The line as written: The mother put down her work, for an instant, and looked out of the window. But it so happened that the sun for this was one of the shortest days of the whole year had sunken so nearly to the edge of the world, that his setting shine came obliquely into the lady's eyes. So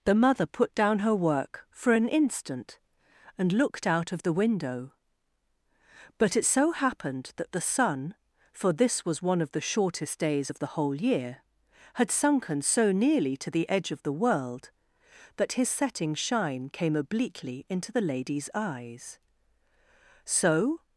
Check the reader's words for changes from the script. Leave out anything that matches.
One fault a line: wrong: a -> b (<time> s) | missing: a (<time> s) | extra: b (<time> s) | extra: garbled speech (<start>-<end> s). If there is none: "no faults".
no faults